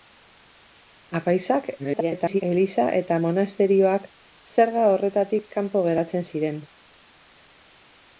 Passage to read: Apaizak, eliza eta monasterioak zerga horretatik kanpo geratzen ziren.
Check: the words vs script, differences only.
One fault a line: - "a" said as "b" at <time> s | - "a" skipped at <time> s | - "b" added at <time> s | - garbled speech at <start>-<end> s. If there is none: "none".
- garbled speech at 1.8-2.4 s